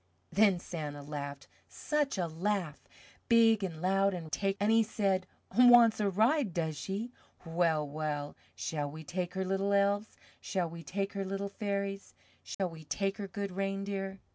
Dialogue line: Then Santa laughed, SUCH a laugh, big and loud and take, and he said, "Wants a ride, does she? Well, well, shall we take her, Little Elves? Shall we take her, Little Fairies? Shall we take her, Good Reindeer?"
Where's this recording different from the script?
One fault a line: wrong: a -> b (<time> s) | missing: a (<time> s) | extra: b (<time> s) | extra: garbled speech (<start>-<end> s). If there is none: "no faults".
no faults